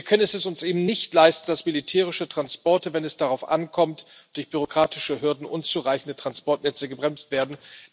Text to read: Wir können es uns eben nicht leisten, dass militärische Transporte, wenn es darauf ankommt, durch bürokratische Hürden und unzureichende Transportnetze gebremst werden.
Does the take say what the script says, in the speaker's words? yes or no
yes